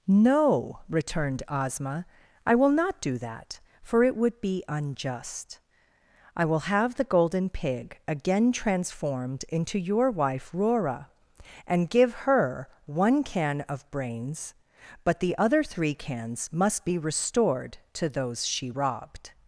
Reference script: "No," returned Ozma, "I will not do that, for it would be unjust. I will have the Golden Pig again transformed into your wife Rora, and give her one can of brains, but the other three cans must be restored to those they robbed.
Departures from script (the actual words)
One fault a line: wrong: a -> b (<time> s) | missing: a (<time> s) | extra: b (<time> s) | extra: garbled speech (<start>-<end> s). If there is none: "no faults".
wrong: they -> she (18.4 s)